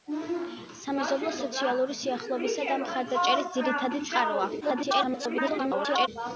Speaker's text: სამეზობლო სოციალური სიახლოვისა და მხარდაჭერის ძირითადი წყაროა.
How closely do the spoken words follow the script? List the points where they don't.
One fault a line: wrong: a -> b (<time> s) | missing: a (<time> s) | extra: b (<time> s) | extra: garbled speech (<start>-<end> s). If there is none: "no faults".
extra: garbled speech (4.6-6.1 s)